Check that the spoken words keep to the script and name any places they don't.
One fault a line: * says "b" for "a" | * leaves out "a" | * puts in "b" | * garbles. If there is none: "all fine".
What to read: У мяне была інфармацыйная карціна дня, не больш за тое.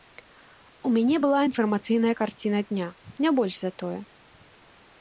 all fine